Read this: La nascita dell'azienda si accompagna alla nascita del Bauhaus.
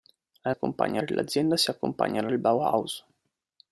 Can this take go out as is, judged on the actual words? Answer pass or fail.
fail